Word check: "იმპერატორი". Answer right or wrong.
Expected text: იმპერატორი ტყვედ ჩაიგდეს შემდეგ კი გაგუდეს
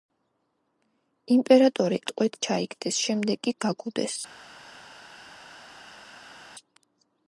right